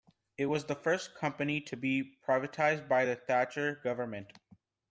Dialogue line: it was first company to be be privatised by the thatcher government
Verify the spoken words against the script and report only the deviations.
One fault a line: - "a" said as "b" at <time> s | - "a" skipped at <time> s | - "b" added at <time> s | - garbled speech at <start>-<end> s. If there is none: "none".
- "the" added at 0.6 s
- "be" skipped at 2.2 s